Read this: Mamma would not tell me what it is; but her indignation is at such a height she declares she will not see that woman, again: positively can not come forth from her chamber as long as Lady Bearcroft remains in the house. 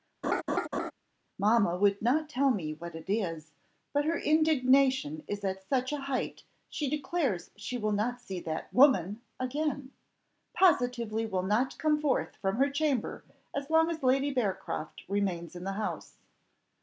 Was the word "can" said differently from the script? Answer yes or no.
yes